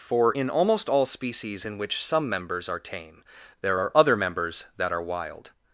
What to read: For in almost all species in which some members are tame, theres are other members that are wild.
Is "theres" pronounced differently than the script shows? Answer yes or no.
yes